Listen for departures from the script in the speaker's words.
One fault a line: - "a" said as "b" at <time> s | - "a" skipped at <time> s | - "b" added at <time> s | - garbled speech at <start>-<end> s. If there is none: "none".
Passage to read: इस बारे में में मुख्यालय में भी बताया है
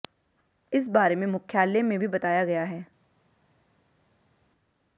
- "में" skipped at 1.2 s
- "गया" added at 2.5 s